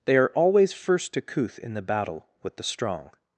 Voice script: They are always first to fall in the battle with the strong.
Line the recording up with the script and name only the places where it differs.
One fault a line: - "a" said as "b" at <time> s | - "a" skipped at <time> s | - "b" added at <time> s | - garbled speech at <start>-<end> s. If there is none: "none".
- "fall" said as "couth" at 1.2 s